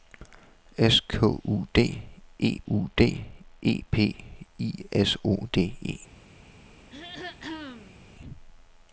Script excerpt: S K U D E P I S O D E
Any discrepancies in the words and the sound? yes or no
yes